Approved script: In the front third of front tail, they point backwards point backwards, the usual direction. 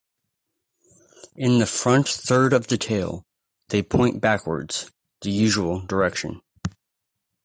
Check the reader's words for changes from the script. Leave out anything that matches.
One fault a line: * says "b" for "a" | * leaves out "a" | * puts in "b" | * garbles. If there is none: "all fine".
* says "the" for "front"
* leaves out "point backwards"